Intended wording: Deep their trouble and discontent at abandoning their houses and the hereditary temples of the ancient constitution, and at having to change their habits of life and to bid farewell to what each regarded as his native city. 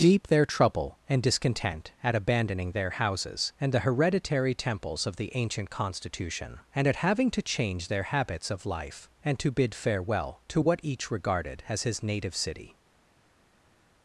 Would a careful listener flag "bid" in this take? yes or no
no